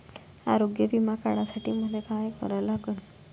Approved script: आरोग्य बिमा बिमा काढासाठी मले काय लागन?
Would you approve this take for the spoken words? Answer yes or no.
no